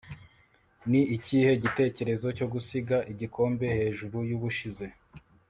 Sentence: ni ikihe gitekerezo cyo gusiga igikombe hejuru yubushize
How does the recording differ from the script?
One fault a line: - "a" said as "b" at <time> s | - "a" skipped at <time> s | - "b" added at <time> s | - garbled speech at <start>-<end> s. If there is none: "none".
none